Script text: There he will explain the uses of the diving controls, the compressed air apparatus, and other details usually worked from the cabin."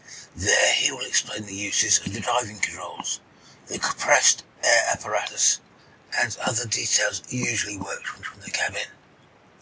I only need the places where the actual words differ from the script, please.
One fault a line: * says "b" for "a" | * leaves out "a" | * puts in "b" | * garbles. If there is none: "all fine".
* puts in "from"